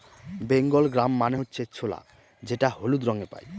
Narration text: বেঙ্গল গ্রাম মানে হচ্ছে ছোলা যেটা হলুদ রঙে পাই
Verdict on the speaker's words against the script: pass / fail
pass